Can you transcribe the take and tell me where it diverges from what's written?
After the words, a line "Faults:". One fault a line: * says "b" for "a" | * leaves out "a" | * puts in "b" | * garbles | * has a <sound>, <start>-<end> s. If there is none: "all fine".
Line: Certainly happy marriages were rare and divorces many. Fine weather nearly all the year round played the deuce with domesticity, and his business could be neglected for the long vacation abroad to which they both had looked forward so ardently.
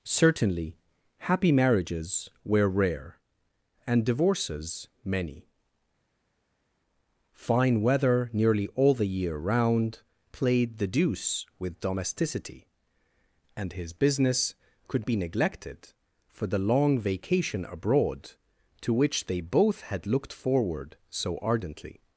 Certainly happy marriages were rare and divorces many. Fine weather nearly all the year round played the deuce with domesticity, and his business could be neglected for the long vacation abroad to which they both had looked forward so ardently.
Faults:
all fine